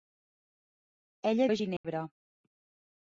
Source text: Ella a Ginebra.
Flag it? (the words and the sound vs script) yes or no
yes